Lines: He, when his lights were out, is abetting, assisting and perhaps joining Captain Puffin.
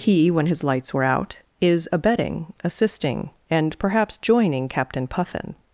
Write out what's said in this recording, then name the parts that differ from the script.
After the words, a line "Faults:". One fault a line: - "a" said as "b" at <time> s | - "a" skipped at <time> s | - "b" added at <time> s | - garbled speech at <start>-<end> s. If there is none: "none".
He, when his lights were out, is abetting, assisting and perhaps joining Captain Puffin.
Faults:
none